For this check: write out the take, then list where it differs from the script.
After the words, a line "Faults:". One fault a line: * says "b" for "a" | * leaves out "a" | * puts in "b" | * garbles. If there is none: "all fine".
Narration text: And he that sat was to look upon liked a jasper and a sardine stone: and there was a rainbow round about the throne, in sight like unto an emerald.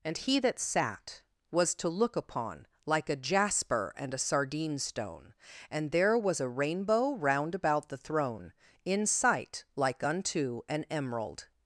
And he that sat was to look upon like a jasper and a sardine stone: and there was a rainbow round about the throne, in sight like unto an emerald.
Faults:
* says "like" for "liked"